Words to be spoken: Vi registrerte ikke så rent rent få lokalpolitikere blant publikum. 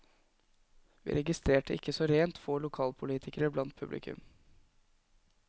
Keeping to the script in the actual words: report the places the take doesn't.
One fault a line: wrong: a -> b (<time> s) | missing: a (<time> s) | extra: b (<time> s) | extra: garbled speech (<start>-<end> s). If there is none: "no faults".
missing: rent (2.4 s)